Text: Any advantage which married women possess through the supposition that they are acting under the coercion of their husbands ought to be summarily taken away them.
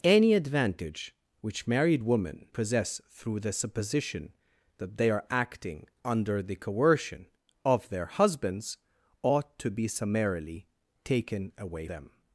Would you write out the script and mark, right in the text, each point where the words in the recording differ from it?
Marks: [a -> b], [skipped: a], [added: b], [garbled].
Any advantage which married women possess through the supposition that they are acting under the coercion of their husbands ought to be summarily taken away them.